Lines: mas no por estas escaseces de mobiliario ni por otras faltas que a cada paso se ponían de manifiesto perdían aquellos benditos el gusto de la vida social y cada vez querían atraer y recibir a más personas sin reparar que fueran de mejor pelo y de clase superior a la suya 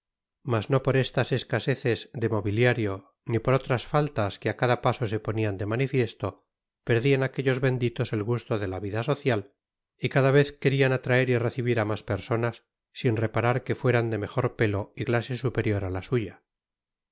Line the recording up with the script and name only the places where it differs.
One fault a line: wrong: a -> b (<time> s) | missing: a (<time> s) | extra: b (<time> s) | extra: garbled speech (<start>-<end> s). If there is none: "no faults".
missing: de (15.0 s)